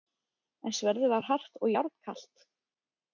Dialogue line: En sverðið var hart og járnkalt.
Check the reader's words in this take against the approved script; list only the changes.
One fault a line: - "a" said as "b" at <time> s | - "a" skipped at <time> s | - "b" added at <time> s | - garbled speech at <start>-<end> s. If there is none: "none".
none